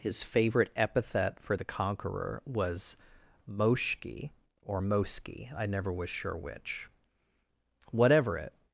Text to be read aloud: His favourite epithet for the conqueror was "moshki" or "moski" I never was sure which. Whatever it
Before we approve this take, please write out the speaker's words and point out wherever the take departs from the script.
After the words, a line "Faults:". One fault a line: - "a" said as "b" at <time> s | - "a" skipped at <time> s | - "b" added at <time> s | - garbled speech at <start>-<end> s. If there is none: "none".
His favourite epithet for the conqueror was "moshki" or "moski" I never was sure which. Whatever it
Faults:
none